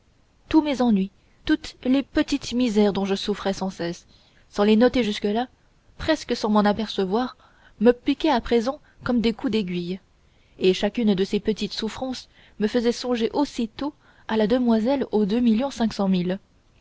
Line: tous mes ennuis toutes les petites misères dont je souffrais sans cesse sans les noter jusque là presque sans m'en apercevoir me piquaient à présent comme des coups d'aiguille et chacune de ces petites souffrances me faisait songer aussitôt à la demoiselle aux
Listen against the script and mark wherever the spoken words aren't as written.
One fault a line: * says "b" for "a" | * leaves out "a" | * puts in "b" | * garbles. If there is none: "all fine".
all fine